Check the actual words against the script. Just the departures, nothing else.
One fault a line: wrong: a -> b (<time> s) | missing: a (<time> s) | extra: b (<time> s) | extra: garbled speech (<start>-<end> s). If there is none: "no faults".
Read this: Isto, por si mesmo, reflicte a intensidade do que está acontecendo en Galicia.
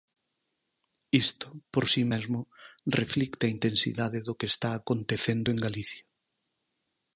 no faults